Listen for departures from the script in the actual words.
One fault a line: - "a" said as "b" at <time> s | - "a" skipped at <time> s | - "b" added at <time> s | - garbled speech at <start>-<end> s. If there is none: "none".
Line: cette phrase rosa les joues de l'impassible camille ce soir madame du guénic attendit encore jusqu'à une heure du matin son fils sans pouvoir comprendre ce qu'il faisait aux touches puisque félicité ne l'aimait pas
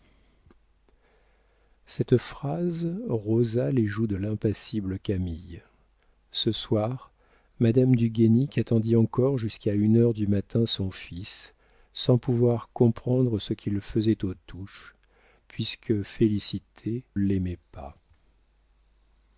- "ne" skipped at 17.1 s